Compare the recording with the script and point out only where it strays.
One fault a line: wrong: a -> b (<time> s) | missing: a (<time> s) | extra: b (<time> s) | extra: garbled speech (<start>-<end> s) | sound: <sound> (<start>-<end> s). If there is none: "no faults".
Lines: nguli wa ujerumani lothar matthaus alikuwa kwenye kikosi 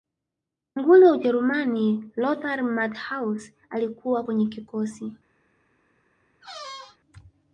sound: squeak (6.4-7.0 s)